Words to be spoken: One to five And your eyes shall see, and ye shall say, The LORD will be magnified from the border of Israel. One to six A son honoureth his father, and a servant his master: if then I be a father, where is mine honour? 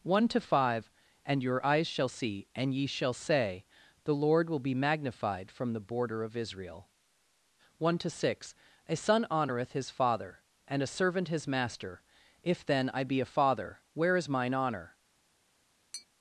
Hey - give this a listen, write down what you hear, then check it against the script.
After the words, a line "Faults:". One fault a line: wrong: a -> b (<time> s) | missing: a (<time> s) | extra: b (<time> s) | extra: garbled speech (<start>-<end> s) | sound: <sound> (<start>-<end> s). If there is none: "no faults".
One to five And your eyes shall see, and ye shall say, The LORD will be magnified from the border of Israel. One to six A son honoureth his father, and a servant his master: if then I be a father, where is mine honour?
Faults:
sound: tap (15.9-16.1 s)